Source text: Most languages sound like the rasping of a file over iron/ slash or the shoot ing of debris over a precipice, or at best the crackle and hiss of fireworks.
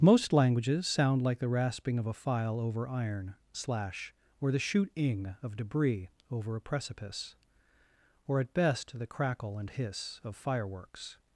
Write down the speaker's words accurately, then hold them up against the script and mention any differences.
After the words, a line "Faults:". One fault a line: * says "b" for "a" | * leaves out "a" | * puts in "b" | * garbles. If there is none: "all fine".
Most languages sound like the rasping of a file over iron/ slash or the shoot ing of debris over a precipice, or at best the crackle and hiss of fireworks.
Faults:
all fine